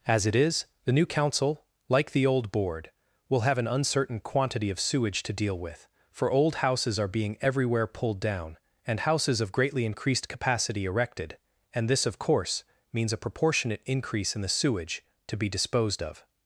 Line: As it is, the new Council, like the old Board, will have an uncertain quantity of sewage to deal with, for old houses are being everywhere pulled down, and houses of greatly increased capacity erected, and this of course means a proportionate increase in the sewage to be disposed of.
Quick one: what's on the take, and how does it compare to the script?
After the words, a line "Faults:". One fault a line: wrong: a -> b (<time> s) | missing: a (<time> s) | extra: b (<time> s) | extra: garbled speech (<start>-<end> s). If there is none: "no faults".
As it is, the new Council, like the old Board, will have an uncertain quantity of sewage to deal with, for old houses are being everywhere pulled down, and houses of greatly increased capacity erected, and this of course means a proportionate increase in the sewage to be disposed of.
Faults:
no faults